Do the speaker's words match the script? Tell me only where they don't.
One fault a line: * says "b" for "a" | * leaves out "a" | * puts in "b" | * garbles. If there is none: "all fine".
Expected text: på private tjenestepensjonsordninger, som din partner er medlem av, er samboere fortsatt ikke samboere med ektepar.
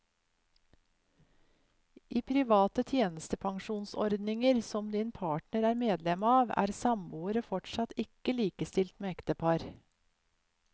* says "I" for "på"
* says "likestilt" for "samboere"